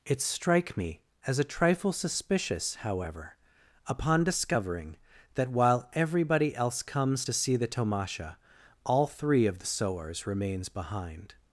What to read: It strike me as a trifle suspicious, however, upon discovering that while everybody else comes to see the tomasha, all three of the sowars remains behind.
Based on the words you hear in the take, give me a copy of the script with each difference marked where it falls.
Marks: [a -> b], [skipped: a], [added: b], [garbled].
It strike me as a trifle suspicious, however, upon discovering that while everybody else comes to see the tomasha, all three of the sowars remains behind.